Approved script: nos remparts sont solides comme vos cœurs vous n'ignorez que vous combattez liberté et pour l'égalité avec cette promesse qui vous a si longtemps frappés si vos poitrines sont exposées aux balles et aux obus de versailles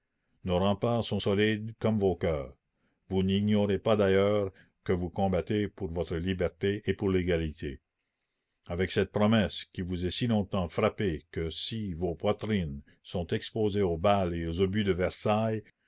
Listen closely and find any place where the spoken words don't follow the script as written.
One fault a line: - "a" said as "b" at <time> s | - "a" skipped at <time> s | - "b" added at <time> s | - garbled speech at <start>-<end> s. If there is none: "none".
- "pas d'ailleurs" added at 3.8 s
- "pour votre" added at 5.7 s
- "que" added at 11.3 s